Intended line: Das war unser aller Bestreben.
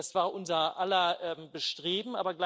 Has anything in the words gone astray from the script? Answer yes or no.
no